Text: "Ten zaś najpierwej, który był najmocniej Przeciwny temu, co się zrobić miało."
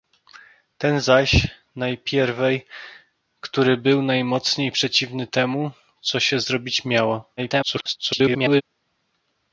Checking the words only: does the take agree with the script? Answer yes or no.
no